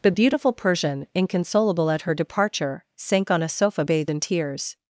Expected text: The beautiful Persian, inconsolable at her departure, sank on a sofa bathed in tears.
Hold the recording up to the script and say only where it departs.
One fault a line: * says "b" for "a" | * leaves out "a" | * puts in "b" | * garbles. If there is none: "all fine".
all fine